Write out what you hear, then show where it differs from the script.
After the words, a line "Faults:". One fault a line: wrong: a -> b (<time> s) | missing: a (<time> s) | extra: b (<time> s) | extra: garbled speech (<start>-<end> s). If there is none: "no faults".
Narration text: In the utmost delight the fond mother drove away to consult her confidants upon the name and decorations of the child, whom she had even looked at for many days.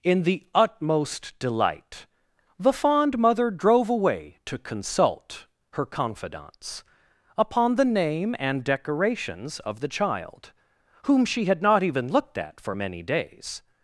In the utmost delight the fond mother drove away to consult her confidants upon the name and decorations of the child, whom she had not even looked at for many days.
Faults:
extra: not (11.6 s)